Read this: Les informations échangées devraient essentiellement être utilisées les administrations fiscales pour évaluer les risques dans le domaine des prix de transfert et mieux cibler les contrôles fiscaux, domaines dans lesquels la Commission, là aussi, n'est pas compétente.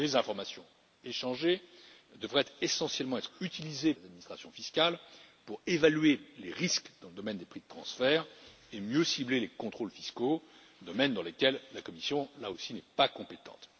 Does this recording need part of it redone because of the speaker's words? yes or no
no